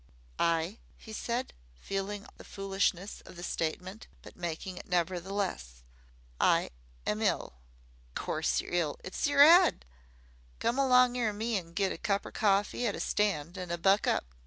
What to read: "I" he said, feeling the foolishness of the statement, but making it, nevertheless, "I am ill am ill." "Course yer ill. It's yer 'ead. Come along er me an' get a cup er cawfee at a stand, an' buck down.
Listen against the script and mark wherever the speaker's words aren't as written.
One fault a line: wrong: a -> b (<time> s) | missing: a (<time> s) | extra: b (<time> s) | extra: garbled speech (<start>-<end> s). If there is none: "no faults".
missing: am ill (7.5 s)
wrong: down -> up (14.1 s)